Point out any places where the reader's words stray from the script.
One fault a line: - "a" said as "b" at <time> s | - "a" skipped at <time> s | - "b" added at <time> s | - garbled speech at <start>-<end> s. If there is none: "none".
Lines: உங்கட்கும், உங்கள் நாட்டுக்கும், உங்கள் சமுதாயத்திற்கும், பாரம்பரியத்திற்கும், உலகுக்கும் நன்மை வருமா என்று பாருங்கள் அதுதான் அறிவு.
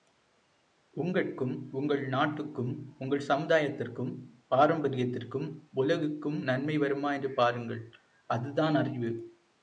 none